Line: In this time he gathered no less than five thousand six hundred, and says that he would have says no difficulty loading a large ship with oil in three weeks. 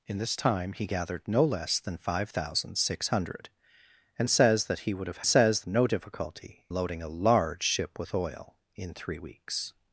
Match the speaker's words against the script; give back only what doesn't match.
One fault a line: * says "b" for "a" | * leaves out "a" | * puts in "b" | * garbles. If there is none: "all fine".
all fine